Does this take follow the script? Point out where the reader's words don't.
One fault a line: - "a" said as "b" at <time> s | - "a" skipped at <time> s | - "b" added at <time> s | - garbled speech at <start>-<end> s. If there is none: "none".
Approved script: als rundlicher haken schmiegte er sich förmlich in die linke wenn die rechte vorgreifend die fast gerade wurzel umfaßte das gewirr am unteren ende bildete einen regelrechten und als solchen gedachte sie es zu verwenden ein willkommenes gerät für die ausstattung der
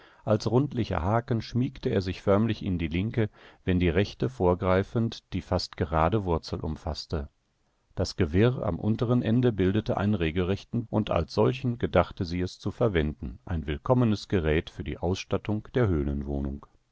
none